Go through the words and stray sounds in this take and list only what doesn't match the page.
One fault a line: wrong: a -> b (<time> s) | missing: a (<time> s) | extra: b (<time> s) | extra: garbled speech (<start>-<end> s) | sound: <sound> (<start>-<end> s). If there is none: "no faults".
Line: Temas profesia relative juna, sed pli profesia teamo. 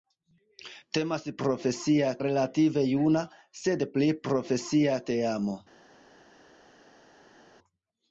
no faults